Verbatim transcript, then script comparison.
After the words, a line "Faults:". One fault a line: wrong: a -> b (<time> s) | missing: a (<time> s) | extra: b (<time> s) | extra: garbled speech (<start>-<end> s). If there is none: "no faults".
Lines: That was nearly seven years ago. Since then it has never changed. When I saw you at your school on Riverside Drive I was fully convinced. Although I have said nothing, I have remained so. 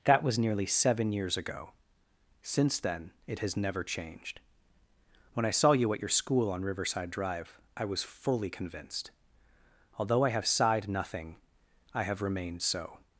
That was nearly seven years ago. Since then it has never changed. When I saw you at your school on Riverside Drive I was fully convinced. Although I have sighed nothing, I have remained so.
Faults:
wrong: said -> sighed (10.5 s)